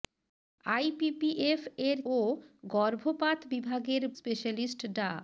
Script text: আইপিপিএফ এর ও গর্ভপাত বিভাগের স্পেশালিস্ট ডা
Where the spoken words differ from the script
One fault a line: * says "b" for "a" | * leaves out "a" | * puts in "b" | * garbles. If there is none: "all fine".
all fine